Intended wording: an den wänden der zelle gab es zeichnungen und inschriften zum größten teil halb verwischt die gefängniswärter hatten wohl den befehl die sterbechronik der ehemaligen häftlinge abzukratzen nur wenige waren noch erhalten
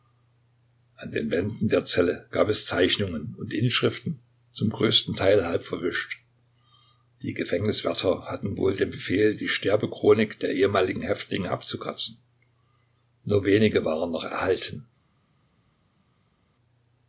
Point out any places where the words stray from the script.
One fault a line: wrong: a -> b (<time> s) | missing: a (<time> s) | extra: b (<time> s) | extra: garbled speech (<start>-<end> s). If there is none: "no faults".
no faults